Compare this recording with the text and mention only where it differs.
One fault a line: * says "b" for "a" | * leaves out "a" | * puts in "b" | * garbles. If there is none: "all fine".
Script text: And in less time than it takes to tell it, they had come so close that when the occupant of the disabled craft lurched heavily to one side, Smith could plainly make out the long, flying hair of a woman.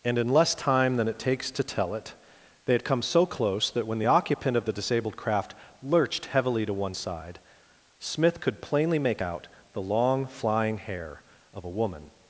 all fine